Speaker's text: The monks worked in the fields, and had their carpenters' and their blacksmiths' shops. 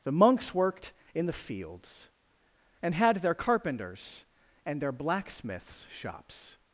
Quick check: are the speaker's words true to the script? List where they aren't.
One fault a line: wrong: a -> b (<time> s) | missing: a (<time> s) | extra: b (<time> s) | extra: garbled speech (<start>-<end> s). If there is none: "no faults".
no faults